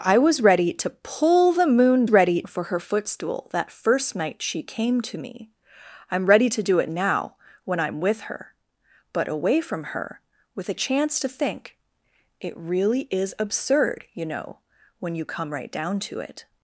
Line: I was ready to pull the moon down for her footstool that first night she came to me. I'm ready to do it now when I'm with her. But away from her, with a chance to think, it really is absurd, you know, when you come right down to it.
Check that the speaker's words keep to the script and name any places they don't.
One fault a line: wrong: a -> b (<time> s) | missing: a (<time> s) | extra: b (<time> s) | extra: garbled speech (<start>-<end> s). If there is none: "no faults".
wrong: down -> ready (2.1 s)